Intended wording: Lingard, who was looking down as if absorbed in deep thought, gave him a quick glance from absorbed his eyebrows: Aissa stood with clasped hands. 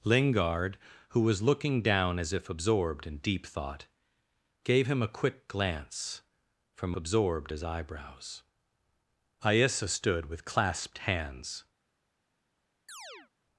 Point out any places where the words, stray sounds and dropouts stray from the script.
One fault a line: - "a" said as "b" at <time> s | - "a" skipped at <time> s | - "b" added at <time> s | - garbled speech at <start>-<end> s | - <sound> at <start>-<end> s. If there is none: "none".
- chirp at 12.9-13.3 s